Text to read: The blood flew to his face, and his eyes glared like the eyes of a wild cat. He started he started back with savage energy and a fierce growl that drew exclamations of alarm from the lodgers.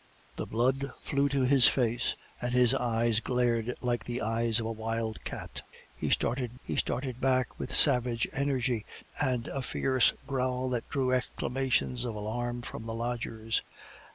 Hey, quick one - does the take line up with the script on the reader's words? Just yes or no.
yes